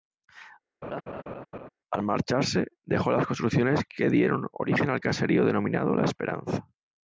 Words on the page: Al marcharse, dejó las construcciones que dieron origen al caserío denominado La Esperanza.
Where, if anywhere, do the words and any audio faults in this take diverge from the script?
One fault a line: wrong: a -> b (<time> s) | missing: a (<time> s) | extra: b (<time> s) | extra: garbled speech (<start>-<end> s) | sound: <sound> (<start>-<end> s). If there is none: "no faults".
sound: laugh (0.8-1.7 s)